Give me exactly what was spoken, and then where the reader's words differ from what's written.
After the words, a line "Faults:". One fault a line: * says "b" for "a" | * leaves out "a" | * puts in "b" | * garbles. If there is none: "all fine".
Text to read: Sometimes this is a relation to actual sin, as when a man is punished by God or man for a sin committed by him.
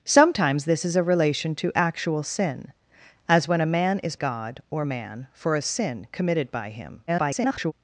Sometimes this is a relation to actual sin, as when a man is God or man for a sin committed by him. [garbled]
Faults:
* leaves out "punished by"
* garbles